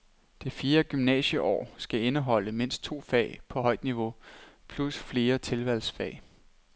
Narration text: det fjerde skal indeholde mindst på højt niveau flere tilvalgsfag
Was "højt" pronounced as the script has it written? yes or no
yes